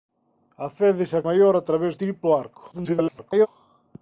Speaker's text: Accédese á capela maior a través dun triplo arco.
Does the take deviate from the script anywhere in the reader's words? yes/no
yes